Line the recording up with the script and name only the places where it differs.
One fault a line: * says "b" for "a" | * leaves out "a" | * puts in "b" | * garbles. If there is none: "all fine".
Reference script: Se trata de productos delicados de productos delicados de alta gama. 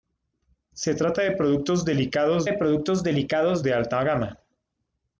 all fine